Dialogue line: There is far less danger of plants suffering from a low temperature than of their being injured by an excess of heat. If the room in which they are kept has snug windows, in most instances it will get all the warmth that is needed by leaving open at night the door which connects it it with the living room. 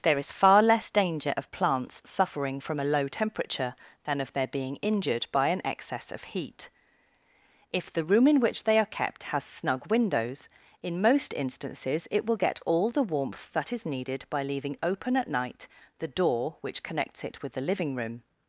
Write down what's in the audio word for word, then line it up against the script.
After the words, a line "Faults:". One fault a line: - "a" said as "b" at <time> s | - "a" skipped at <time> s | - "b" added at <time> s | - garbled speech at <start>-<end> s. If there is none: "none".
There is far less danger of plants suffering from a low temperature than of their being injured by an excess of heat. If the room in which they are kept has snug windows, in most instances it will get all the warmth that is needed by leaving open at night the door which connects it with the living room.
Faults:
- "it" skipped at 17.4 s